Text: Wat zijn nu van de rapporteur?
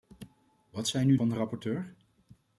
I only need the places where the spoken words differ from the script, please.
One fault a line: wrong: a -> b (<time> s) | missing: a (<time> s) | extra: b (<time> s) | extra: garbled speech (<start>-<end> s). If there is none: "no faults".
no faults